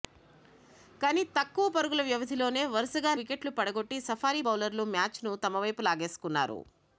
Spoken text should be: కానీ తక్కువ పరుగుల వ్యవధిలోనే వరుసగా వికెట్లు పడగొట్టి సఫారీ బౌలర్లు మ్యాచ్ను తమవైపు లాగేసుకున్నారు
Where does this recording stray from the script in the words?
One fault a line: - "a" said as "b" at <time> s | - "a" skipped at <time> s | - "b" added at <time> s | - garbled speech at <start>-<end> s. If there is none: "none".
none